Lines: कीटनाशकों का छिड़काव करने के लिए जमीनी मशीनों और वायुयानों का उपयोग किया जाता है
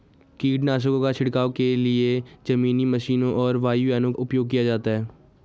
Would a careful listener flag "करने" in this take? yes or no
yes